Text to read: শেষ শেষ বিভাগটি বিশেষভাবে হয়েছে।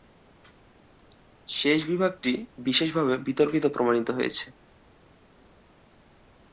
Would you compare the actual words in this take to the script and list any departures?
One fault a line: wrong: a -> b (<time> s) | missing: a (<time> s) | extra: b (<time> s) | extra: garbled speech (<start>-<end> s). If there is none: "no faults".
missing: শেষ (1.8 s)
extra: বিতর্কিত প্রমাণিত (3.3 s)